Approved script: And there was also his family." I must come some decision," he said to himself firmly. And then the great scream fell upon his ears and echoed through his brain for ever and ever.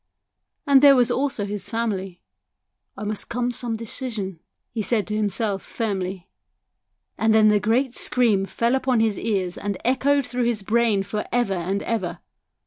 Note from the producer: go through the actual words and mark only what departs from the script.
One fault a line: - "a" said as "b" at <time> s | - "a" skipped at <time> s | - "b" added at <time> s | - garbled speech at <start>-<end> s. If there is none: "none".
none